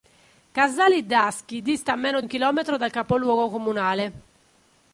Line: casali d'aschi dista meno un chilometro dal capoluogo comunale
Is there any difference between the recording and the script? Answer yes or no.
no